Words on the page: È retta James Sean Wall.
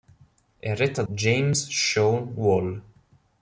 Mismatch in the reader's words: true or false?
false